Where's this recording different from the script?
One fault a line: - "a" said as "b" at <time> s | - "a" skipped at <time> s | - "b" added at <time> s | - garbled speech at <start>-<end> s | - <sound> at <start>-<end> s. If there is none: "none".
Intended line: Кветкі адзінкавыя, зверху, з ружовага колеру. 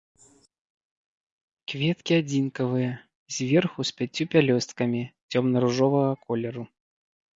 - "пяццю пялёсткамі цёмна" added at 4.0 s